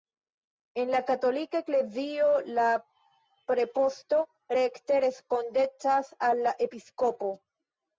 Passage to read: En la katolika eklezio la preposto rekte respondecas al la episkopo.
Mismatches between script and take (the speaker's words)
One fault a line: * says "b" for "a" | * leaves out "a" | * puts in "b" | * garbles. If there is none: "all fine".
all fine